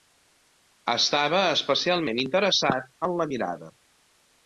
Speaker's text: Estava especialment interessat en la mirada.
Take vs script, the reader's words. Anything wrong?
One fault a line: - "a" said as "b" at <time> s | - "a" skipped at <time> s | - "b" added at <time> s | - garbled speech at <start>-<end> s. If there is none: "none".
none